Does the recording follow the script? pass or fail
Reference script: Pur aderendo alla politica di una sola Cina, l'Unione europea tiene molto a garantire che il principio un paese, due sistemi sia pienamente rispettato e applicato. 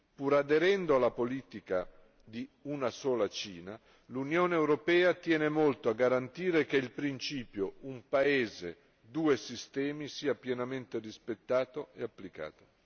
pass